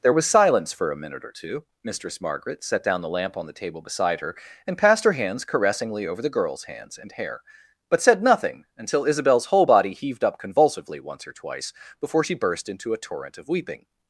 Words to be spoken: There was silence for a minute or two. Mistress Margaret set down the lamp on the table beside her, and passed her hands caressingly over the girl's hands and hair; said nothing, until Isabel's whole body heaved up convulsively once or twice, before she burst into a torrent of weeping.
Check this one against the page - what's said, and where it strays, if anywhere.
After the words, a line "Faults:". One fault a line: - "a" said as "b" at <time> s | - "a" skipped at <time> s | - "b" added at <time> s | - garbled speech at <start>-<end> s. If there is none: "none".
There was silence for a minute or two. Mistress Margaret set down the lamp on the table beside her, and passed her hands caressingly over the girl's hands and hair; but said nothing, until Isabel's whole body heaved up convulsively once or twice, before she burst into a torrent of weeping.
Faults:
- "but" added at 7.9 s